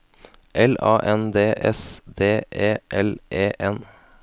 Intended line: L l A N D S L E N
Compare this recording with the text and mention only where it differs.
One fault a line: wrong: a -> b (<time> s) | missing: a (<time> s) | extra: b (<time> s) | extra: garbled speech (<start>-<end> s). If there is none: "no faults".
missing: l (0.7 s)
extra: D E (2.2 s)